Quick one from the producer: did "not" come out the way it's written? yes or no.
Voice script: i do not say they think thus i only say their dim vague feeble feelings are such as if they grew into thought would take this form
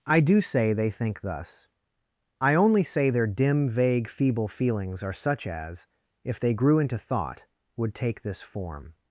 no